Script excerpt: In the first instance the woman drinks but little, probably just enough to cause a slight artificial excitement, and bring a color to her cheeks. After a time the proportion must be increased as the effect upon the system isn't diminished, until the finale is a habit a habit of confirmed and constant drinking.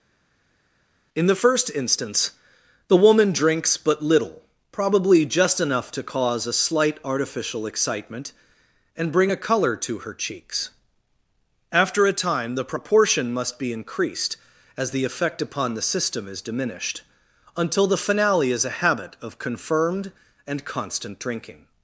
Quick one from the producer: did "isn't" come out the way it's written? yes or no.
no